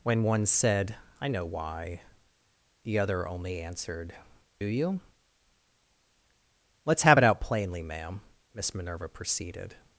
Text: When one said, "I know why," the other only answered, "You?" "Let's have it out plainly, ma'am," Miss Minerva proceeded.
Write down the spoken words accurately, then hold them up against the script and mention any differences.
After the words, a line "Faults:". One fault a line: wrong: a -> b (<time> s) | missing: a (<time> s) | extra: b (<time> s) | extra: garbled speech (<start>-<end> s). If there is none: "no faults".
When one said, "I know why," the other only answered, "You?" "Let's have it out plainly, ma'am," Miss Minerva proceeded.
Faults:
no faults